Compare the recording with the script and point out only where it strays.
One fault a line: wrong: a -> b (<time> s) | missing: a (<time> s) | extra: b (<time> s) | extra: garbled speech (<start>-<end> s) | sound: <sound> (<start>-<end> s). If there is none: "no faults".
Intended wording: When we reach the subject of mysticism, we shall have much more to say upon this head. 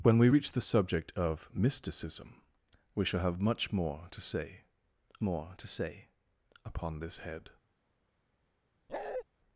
extra: more to say (5.2 s)
sound: bark (8.9-9.2 s)